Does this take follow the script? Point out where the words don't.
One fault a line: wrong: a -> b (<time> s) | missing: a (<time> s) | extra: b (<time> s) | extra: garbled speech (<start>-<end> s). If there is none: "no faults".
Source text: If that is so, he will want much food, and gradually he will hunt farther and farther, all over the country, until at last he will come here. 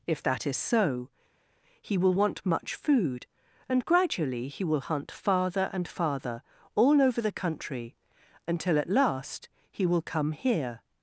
no faults